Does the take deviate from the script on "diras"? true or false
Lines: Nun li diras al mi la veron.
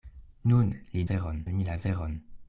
true